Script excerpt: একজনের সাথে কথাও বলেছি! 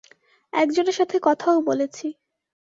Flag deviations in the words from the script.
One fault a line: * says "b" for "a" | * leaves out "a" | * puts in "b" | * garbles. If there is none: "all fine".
all fine